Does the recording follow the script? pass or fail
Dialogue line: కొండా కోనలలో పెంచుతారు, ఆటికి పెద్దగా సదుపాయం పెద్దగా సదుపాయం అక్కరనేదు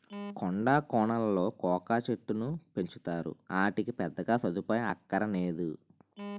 fail